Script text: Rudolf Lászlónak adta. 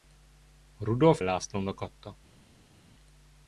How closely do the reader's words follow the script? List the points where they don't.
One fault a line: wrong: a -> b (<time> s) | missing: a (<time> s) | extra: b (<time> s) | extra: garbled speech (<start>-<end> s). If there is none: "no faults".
no faults